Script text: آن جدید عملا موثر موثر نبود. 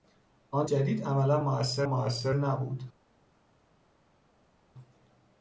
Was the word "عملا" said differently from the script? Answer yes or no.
no